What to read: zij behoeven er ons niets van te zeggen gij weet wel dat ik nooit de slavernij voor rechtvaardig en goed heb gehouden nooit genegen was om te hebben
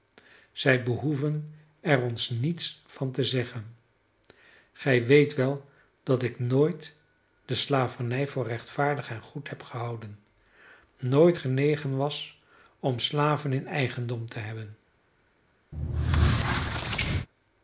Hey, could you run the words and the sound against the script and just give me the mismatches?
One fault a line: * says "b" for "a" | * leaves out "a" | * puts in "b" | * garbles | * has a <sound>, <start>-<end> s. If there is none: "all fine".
* puts in "slaven in eigendom"
* has a squeak, 15.7-17.3 s